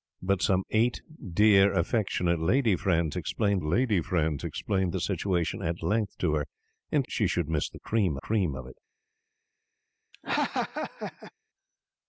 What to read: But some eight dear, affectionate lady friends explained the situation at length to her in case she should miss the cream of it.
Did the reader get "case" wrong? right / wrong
wrong